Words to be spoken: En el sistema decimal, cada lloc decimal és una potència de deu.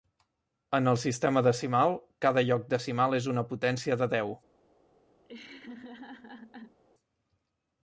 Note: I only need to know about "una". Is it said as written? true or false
true